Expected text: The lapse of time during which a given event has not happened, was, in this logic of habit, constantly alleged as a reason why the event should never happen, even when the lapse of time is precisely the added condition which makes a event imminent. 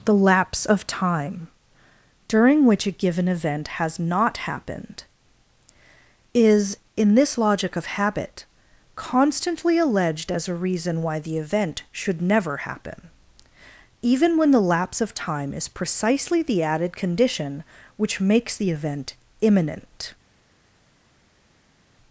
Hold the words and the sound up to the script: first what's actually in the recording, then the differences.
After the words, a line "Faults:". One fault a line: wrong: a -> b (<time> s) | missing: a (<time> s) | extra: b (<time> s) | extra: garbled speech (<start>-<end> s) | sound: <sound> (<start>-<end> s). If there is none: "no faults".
The lapse of time during which a given event has not happened, is, in this logic of habit, constantly alleged as a reason why the event should never happen, even when the lapse of time is precisely the added condition which makes the event imminent.
Faults:
wrong: was -> is (6.3 s)
wrong: a -> the (18.5 s)